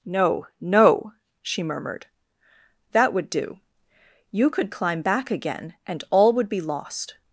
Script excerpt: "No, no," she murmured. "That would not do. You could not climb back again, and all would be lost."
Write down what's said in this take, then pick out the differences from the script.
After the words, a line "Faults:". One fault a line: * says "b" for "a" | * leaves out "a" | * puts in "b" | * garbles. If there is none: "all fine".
"No, no," she murmured. "That would do. You could climb back again, and all would be lost."
Faults:
* leaves out "not"
* leaves out "not"